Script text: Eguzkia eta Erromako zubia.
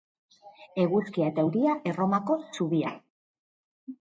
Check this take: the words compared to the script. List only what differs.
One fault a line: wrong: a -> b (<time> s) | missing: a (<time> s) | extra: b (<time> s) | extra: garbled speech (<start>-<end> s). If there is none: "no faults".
extra: euria (1.5 s)